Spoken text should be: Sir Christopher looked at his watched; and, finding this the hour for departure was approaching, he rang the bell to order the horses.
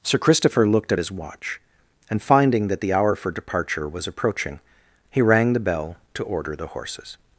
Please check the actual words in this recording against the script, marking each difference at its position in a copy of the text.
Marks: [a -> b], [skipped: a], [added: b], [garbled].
Sir Christopher looked at his [watched; -> watch] and, finding [this -> that] the hour for departure was approaching, he rang the bell to order the horses.